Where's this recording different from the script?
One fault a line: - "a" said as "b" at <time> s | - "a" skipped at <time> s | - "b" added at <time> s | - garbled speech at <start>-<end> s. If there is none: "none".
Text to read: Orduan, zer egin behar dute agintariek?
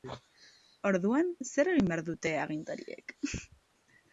none